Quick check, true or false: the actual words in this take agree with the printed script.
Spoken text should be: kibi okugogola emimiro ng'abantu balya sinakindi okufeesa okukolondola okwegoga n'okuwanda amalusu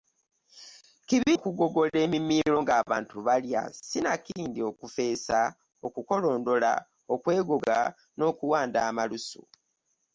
true